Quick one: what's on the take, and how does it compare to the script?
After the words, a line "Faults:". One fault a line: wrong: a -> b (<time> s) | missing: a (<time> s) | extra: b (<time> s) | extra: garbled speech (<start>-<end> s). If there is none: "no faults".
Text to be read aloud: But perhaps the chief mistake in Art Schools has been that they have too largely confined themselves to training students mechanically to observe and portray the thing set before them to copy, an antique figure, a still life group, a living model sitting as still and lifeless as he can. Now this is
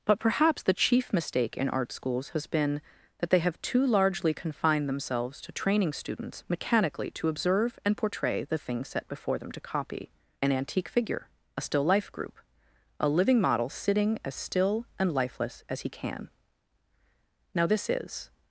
But perhaps the chief mistake in Art Schools has been that they have too largely confined themselves to training students mechanically to observe and portray the thing set before them to copy, an antique figure, a still life group, a living model sitting as still and lifeless as he can. Now this is
Faults:
no faults